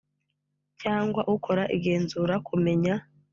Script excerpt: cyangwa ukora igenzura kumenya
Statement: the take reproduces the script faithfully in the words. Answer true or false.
true